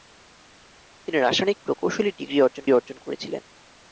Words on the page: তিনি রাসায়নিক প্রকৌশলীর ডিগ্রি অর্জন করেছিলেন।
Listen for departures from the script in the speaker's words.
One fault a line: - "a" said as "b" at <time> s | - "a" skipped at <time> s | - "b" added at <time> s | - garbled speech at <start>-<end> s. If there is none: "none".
- "অর্জন" added at 2.7 s